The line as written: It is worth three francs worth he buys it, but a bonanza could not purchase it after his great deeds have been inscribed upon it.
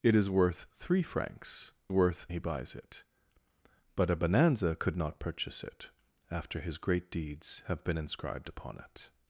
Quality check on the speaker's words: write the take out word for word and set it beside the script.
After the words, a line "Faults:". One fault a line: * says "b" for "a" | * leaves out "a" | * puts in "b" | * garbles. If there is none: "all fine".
It is worth three francs worth he buys it, but a bonanza could not purchase it after his great deeds have been inscribed upon it.
Faults:
all fine